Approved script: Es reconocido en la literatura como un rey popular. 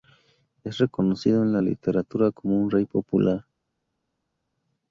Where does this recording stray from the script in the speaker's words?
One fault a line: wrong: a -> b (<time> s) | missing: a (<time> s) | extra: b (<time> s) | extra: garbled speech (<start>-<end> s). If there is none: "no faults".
no faults